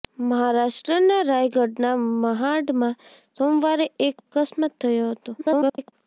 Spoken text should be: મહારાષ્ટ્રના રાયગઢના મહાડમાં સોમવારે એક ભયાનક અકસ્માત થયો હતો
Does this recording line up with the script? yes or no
no